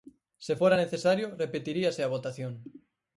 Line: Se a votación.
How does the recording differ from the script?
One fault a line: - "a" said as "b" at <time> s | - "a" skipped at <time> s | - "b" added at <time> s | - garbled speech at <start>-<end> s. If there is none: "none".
- "fora necesario repetiríase" added at 0.5 s